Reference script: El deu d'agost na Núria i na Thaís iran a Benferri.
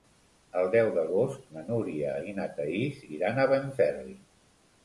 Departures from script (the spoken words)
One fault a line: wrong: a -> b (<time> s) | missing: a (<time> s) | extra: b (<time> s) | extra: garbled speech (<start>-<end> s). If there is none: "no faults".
no faults